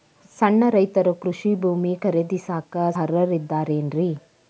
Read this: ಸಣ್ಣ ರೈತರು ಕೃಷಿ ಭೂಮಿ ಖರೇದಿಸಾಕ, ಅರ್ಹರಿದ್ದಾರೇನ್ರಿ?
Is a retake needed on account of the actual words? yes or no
no